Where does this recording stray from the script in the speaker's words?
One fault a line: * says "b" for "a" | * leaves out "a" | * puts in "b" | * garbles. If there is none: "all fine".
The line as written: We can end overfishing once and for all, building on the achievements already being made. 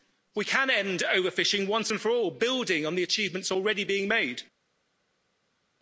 all fine